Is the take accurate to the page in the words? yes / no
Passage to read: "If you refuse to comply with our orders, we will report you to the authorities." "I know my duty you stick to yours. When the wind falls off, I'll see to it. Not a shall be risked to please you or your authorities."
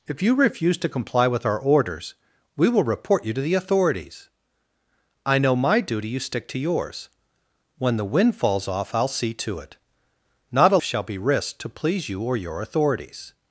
yes